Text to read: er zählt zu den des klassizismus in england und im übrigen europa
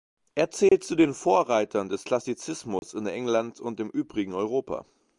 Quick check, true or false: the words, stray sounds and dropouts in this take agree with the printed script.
false